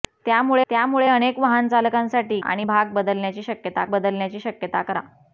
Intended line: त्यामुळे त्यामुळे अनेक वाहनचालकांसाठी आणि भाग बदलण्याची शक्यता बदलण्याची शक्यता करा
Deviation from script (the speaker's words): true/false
false